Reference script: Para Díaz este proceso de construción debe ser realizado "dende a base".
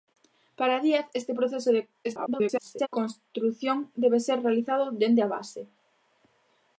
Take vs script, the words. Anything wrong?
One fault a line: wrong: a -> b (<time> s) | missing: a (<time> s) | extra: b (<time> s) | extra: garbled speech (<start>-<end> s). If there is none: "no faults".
extra: garbled speech (2.0-2.9 s)